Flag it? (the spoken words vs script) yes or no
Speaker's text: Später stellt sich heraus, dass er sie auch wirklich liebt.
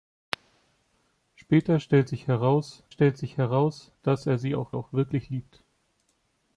yes